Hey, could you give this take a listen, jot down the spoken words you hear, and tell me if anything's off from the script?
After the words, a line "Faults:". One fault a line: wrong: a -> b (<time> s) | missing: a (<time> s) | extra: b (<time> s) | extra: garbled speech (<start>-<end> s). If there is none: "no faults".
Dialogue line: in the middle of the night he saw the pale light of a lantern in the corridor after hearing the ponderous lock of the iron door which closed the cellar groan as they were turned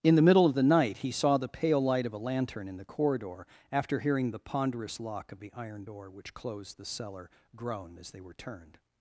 in the middle of the night he saw the pale light of a lantern in the corridor after hearing the ponderous lock of the iron door which closed the cellar groan as they were turned
Faults:
no faults